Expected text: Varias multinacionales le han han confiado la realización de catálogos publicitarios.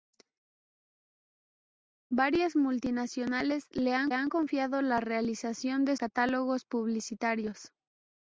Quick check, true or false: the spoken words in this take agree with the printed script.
true